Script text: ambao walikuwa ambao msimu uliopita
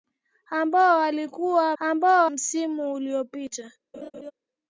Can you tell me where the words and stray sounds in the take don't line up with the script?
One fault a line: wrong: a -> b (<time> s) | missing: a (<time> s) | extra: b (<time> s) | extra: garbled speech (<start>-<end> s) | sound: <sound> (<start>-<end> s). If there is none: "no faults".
sound: laugh (3.9-4.3 s)